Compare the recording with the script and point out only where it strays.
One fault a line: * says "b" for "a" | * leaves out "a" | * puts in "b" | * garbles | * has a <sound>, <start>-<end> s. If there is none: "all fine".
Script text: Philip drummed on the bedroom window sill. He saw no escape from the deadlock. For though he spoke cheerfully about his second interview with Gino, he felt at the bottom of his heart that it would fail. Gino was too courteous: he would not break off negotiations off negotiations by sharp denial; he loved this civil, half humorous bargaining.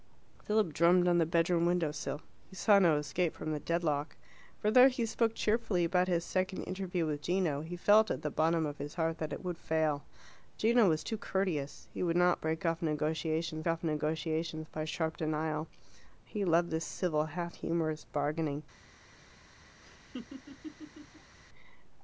* has a laugh, 19.8-21.4 s